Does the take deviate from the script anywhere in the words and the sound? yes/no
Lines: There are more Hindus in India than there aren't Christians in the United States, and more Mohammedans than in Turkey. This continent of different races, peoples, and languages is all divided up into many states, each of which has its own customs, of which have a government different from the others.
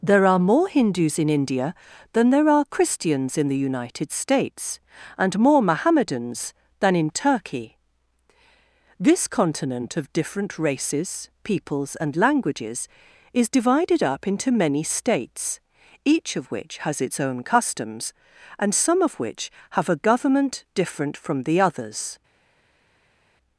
yes